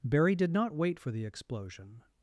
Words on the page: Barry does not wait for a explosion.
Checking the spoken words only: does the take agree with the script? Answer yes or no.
no